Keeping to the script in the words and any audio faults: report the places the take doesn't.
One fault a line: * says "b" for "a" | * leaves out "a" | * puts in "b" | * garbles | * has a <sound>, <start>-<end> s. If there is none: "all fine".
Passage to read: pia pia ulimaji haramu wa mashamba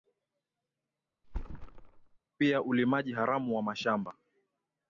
* has a thud, 1.2-2.2 s
* leaves out "pia"